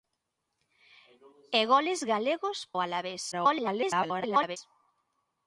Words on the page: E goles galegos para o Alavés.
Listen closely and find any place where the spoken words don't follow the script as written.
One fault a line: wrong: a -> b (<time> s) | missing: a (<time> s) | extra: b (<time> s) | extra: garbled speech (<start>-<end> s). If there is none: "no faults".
missing: para (2.6 s)
extra: garbled speech (3.3-4.6 s)